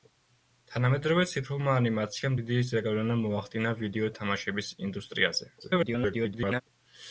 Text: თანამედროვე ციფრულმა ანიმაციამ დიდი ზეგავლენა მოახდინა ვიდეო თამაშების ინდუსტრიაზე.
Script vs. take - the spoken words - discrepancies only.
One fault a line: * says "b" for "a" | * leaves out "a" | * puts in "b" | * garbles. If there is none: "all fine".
* garbles